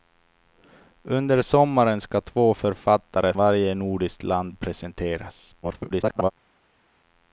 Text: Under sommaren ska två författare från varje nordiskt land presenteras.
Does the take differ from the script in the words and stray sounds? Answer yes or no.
yes